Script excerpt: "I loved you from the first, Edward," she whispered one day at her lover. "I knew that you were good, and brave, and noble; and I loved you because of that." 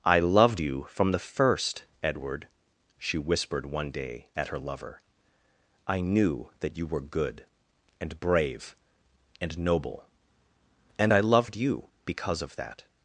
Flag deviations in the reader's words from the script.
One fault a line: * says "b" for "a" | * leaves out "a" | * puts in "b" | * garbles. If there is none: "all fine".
all fine